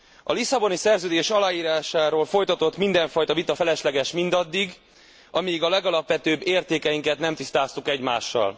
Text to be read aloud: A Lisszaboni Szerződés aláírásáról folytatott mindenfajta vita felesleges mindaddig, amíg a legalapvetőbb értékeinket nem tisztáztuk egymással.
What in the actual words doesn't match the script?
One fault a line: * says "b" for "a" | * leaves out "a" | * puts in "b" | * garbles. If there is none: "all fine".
all fine